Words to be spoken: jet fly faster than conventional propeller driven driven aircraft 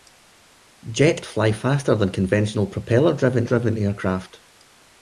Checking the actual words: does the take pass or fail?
pass